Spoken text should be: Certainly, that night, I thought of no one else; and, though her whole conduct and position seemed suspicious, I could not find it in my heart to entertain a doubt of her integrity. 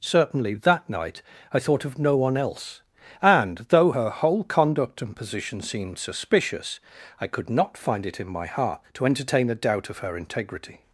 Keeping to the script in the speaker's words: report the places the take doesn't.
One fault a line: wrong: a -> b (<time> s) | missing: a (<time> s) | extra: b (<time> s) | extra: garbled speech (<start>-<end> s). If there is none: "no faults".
no faults